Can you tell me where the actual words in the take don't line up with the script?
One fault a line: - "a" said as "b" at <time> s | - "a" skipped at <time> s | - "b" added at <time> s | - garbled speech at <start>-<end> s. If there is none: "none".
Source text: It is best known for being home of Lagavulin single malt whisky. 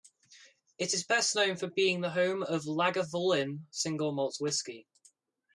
- "the" added at 2.0 s